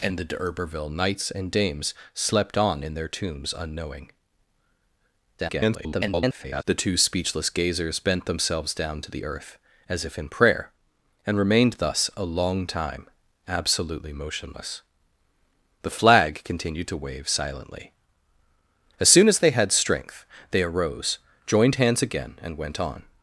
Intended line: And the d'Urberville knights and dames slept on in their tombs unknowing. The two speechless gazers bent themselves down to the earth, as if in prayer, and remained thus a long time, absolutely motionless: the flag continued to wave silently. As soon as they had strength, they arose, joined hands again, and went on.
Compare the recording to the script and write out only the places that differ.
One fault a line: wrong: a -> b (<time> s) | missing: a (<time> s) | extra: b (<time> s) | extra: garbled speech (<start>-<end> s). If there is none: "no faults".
extra: garbled speech (5.4-6.6 s)